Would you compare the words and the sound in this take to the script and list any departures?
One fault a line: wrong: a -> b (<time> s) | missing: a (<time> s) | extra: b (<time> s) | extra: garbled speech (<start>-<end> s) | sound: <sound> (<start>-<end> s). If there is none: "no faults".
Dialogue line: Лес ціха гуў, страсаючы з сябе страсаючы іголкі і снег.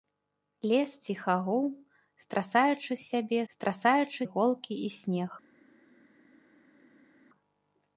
no faults